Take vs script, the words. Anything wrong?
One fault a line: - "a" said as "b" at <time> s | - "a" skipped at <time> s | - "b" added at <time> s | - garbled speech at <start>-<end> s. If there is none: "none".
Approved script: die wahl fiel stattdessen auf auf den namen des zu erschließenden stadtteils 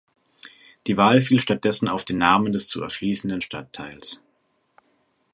- "auf" skipped at 2.1 s